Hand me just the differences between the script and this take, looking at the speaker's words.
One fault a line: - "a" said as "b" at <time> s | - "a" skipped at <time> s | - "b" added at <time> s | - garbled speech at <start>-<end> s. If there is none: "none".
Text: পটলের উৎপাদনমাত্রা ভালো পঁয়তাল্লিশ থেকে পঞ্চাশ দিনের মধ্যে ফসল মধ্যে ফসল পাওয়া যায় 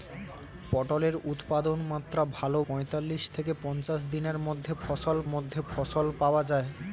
none